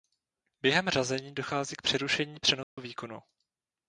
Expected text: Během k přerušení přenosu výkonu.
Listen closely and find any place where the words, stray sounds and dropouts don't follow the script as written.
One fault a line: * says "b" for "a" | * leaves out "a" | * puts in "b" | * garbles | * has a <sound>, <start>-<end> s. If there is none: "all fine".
* puts in "řazení dochází"
* has a dropout, 2.6-2.8 s